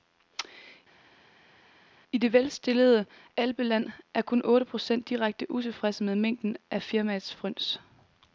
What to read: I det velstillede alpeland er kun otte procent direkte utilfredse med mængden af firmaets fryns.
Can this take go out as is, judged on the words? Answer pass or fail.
pass